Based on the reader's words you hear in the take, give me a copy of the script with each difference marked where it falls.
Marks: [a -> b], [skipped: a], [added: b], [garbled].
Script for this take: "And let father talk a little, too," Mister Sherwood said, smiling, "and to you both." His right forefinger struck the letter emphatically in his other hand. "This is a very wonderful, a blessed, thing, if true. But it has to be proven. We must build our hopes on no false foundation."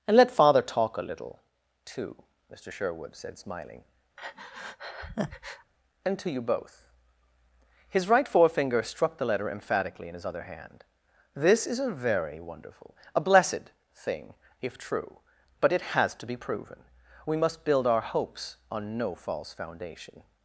"And let father talk a little, too," Mister Sherwood said, smiling, "and to you both." His right forefinger struck the letter emphatically in his other hand. "This is a very wonderful, a blessed, thing, if true. But it has to be proven. We must build our hopes on no false foundation."